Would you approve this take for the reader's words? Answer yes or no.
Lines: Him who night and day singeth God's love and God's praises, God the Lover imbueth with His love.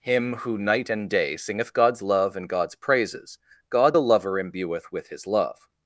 yes